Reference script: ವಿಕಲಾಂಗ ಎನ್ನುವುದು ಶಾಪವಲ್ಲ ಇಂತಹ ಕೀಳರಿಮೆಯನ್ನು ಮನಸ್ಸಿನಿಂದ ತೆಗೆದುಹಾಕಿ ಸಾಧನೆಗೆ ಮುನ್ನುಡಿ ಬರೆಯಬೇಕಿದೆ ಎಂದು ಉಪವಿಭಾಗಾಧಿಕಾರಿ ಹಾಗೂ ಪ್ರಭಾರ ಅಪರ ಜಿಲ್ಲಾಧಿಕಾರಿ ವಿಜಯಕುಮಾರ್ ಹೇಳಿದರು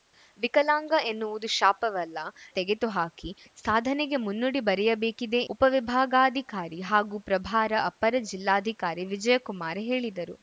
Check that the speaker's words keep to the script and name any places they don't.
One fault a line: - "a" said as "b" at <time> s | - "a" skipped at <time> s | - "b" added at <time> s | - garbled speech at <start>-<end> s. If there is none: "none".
- "ಇಂತಹ ಕೀಳರಿಮೆಯನ್ನು ಮನಸ್ಸಿನಿಂದ" skipped at 2.2 s
- "ಎಂದು" skipped at 5.4 s